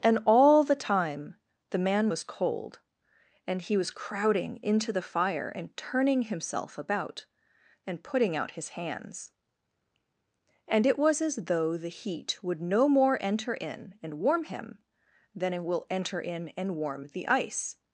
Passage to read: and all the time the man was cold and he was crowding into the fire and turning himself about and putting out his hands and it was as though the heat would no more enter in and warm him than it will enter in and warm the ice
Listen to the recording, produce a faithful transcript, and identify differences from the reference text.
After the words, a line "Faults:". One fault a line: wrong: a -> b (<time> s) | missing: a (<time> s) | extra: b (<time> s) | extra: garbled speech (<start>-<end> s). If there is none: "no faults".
and all the time the man was cold and he was crowding into the fire and turning himself about and putting out his hands and it was as though the heat would no more enter in and warm him than it will enter in and warm the ice
Faults:
no faults